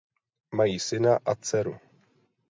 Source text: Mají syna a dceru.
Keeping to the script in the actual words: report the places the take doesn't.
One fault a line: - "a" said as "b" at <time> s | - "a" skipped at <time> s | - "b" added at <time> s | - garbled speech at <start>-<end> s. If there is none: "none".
none